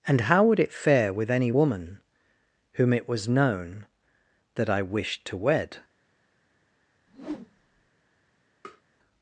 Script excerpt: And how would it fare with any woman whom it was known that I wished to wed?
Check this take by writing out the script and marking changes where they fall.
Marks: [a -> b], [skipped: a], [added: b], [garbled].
And how would it fare with any woman whom it was known that I wished to wed?